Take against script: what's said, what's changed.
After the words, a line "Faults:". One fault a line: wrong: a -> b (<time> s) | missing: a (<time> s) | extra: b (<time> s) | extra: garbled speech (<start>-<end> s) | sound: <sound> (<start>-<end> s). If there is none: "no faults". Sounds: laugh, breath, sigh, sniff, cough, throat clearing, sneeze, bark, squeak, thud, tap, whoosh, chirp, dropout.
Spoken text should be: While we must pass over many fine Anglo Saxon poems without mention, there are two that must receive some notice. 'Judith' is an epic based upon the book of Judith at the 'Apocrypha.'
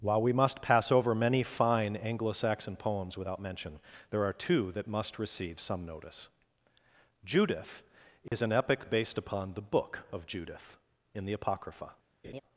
While we must pass over many fine Anglo Saxon poems without mention, there are two that must receive some notice. 'Judith' is an epic based upon the book of Judith in the 'Apocrypha.'
Faults:
sound: dropout (8.3-8.3 s)
wrong: at -> in (11.1 s)
sound: laugh (12.2-12.4 s)